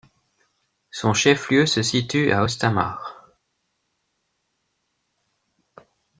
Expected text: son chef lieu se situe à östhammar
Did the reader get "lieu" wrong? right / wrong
right